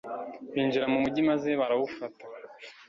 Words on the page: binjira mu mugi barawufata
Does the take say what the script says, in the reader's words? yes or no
no